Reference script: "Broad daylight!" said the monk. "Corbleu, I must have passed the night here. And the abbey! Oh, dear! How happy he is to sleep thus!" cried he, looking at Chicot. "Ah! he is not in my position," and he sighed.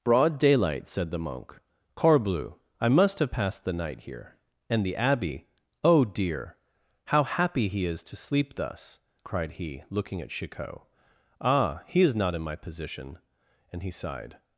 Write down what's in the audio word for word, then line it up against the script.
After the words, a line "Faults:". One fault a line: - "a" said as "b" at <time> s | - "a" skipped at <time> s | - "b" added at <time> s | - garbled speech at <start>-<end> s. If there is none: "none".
"Broad daylight!" said the monk. "Corbleu, I must have passed the night here. And the abbey! Oh, dear! How happy he is to sleep thus!" cried he, looking at Chicot. "Ah! he is not in my position," and he sighed.
Faults:
none